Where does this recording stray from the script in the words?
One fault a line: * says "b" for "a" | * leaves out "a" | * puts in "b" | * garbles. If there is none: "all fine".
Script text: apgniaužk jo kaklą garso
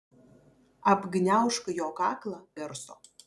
all fine